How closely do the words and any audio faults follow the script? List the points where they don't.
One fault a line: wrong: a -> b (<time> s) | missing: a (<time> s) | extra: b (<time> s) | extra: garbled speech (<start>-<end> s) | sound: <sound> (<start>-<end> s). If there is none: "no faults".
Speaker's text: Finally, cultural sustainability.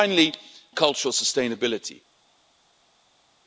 no faults